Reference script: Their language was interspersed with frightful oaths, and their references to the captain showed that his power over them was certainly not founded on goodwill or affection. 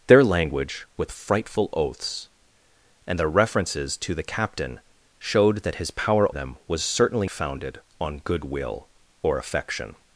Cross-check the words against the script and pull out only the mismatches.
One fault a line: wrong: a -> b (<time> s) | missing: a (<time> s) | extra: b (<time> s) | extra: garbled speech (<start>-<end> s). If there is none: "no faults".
missing: was interspersed (0.9 s)
missing: over (6.3 s)
missing: not (7.3 s)